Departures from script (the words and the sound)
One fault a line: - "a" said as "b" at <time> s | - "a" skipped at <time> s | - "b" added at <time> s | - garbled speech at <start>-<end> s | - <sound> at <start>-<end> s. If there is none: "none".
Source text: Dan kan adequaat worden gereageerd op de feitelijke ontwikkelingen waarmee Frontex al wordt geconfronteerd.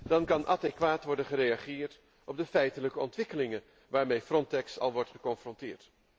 none